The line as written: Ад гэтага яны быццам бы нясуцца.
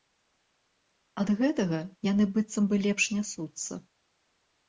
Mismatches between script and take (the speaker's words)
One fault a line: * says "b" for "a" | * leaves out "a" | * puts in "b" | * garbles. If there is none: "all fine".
* puts in "лепш"